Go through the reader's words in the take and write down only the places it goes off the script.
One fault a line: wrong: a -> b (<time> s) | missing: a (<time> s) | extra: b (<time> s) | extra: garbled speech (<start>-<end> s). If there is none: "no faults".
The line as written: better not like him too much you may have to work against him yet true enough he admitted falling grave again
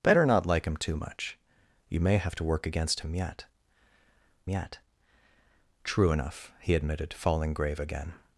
extra: yet (4.5 s)